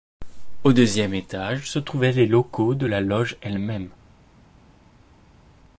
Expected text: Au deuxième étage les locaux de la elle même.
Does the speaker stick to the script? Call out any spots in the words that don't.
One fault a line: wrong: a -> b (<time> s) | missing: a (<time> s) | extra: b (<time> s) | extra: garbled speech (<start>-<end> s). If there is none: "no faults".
extra: se trouvaient (1.7 s)
extra: loge (3.0 s)